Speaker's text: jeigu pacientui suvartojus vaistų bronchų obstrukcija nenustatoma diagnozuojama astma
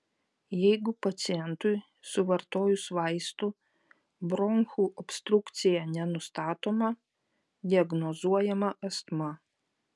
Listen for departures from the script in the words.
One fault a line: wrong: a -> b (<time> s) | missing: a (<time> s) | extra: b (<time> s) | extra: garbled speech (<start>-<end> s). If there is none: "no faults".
no faults